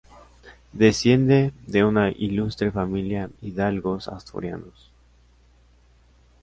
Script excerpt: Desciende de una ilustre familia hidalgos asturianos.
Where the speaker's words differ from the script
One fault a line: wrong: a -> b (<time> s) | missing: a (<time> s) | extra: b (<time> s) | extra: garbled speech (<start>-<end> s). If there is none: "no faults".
no faults